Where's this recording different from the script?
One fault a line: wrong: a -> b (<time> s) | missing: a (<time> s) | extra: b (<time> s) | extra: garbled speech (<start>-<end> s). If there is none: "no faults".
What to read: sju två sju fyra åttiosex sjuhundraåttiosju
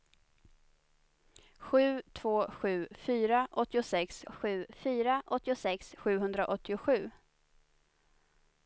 extra: sju fyra åttiosex (4.3 s)